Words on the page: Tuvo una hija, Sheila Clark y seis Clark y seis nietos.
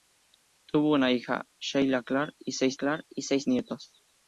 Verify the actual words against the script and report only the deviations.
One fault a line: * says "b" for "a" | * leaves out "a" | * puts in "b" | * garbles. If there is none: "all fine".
all fine